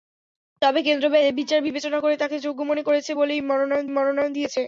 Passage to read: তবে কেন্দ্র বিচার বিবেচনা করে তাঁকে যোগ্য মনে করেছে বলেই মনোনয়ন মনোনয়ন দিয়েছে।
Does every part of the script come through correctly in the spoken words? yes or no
yes